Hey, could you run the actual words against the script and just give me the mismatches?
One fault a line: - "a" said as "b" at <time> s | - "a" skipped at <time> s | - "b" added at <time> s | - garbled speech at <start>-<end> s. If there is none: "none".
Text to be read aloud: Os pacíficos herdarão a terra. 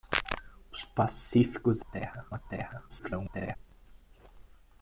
- "herdarão" said as "terra" at 1.8 s
- garbled speech at 2.9-3.6 s